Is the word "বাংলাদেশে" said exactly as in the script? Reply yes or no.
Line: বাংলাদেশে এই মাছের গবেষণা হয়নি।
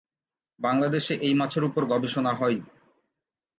yes